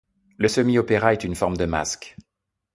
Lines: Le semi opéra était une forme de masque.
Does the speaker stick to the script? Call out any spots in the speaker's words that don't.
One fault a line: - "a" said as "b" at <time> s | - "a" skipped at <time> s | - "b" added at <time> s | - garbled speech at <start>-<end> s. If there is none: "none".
- "était" said as "est" at 1.1 s